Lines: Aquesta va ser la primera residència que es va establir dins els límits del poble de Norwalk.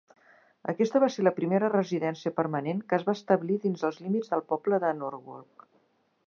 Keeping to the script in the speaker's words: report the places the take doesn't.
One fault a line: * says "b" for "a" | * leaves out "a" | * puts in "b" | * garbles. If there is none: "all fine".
* puts in "permanent"